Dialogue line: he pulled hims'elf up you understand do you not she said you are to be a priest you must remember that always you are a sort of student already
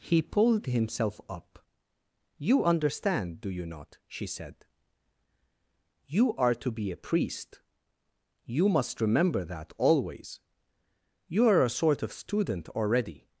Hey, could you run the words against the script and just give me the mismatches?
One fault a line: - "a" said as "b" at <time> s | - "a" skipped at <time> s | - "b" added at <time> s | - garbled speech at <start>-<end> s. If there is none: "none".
none